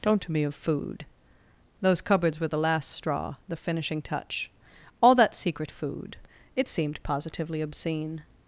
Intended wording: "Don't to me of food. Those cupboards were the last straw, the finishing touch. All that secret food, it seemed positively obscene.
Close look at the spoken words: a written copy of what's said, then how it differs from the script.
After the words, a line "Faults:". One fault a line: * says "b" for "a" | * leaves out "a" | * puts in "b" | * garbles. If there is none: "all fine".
"Don't to me of food. Those cupboards were the last straw, the finishing touch. All that secret food, it seemed positively obscene.
Faults:
all fine